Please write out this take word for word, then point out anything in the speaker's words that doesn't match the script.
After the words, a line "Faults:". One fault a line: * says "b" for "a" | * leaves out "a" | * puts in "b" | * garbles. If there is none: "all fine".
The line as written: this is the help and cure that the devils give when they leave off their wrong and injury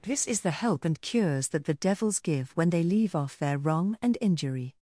this is the help and cures that the devils give when they leave off their wrong and injury
Faults:
* says "cures" for "cure"